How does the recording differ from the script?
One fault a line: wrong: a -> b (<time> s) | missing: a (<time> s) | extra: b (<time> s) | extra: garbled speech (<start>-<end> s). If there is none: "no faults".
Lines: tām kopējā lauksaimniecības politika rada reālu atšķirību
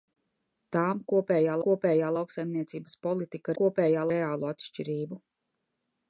extra: kopējā (1.7 s)
wrong: rada -> kopējā (3.6 s)